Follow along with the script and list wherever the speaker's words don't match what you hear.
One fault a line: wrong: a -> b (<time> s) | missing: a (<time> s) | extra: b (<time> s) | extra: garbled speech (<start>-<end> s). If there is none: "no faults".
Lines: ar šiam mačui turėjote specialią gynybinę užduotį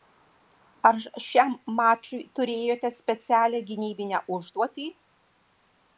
no faults